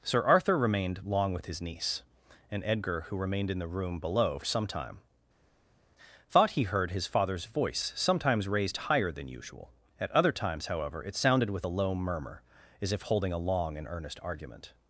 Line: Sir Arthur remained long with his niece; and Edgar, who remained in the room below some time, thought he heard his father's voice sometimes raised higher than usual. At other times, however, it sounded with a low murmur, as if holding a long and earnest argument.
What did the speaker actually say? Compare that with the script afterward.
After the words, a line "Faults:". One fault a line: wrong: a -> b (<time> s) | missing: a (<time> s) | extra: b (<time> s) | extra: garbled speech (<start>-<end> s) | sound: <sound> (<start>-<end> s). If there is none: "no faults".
Sir Arthur remained long with his niece; and Edgar, who remained in the room below some time, thought he heard his father's voice sometimes raised higher than usual. At other times, however, it sounded with a low murmur, as if holding a long and earnest argument.
Faults:
no faults